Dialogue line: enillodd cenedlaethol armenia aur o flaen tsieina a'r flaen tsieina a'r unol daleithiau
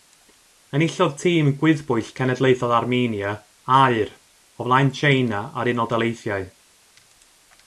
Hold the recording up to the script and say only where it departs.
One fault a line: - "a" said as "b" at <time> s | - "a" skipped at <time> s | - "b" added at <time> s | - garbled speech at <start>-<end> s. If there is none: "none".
- "tîm gwyddbwyll" added at 1.2 s
- "flaen tsieina a'r" skipped at 5.7 s